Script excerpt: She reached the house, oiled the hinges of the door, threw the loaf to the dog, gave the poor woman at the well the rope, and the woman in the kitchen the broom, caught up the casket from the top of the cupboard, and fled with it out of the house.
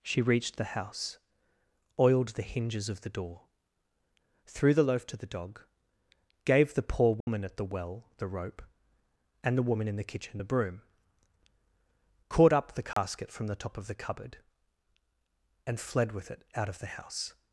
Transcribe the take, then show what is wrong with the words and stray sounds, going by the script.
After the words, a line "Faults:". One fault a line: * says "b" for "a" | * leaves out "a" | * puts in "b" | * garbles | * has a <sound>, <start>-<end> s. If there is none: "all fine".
She reached the house, oiled the hinges of the door, threw the loaf to the dog, gave the poor woman at the well the rope, and the woman in the kitchen the broom, caught up the casket from the top of the cupboard, and fled with it out of the house.
Faults:
* has a dropout, 7.2-7.3 s
* has a dropout, 12.9-13.0 s